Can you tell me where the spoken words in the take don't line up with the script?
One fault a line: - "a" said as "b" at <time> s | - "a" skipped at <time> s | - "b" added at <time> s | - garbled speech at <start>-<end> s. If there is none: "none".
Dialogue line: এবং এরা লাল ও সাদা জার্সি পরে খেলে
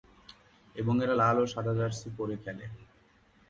none